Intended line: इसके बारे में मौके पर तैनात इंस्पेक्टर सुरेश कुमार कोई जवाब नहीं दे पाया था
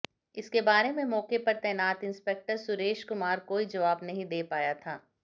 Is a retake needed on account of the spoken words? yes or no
no